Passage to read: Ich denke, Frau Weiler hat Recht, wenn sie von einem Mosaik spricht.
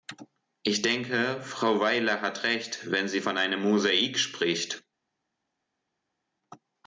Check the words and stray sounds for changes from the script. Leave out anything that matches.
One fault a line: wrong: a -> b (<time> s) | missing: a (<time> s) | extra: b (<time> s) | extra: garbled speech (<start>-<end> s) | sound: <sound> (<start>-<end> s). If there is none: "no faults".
no faults